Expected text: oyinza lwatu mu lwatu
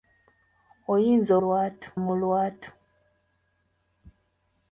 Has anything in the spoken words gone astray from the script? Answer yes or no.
no